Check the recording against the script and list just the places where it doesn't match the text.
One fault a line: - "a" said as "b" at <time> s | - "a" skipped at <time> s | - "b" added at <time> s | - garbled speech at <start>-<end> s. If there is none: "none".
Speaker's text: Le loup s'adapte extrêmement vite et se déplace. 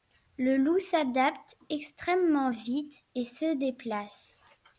none